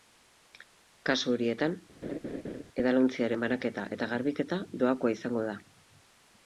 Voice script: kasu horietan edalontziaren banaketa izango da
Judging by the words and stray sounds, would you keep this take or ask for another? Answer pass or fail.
fail